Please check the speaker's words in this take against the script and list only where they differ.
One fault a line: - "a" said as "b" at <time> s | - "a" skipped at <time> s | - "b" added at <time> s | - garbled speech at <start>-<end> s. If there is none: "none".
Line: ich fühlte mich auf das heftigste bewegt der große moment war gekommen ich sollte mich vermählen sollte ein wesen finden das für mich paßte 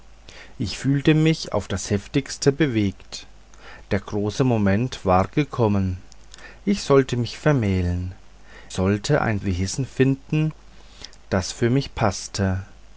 none